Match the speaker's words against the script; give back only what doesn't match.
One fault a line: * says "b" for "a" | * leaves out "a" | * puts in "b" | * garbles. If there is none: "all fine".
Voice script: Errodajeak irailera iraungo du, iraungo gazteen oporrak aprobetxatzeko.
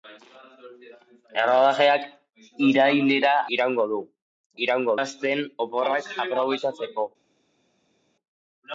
all fine